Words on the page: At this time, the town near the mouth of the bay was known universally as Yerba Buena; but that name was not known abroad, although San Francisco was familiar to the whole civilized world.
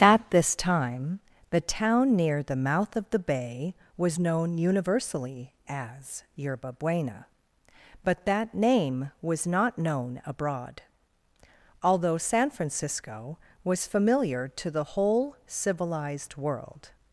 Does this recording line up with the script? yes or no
yes